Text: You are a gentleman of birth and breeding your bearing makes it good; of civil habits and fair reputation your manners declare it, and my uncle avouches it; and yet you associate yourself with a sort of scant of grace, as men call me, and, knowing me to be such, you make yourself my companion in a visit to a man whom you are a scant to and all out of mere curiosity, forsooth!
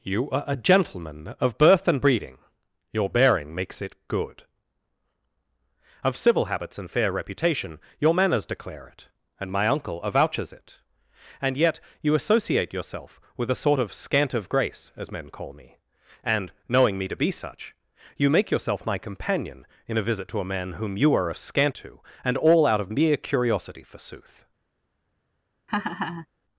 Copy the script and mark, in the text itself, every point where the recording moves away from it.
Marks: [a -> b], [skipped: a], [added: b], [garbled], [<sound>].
You are a gentleman of birth and breeding your bearing makes it good; of civil habits and fair reputation your manners declare it, and my uncle avouches it; and yet you associate yourself with a sort of scant of grace, as men call me, and, knowing me to be such, you make yourself my companion in a visit to a man whom you are a scant to and all out of mere curiosity, forsooth! [laugh]